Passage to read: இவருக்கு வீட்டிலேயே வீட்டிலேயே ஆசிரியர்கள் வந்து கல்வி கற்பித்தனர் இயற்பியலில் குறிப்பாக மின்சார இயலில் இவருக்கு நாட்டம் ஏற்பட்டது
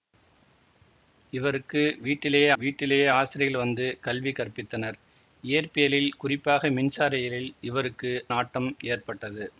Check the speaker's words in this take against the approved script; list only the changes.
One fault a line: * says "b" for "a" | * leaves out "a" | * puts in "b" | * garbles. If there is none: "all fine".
all fine